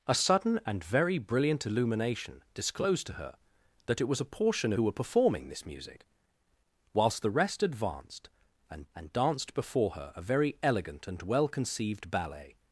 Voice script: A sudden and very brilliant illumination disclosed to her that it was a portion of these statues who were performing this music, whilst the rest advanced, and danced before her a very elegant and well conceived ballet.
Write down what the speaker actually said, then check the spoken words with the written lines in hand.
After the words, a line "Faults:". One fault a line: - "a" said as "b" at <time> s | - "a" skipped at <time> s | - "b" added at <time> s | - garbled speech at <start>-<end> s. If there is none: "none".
A sudden and very brilliant illumination disclosed to her that it was a portion who were performing this music, whilst the rest advanced, and and danced before her a very elegant and well conceived ballet.
Faults:
- "of these statues" skipped at 4.7 s
- "and" added at 8.9 s